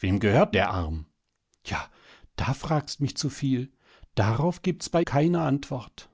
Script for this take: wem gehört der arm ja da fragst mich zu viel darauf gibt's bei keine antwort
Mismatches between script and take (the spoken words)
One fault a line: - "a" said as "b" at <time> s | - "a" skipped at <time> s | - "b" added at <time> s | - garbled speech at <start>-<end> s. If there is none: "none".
none